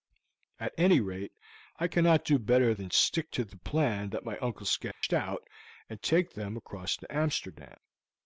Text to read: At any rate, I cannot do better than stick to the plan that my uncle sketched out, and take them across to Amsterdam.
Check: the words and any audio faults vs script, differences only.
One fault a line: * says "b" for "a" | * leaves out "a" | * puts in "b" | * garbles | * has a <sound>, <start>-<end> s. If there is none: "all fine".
* has a dropout, 4.9-5.0 s